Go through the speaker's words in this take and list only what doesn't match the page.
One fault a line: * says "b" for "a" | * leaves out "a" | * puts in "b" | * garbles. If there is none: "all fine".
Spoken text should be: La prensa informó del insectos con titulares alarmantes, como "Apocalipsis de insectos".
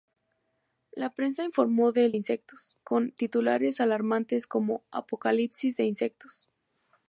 all fine